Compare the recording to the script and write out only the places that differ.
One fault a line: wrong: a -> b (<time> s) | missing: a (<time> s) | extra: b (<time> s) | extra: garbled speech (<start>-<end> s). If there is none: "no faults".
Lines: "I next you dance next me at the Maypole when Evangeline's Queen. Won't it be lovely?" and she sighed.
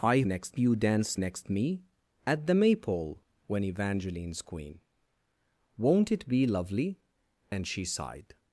no faults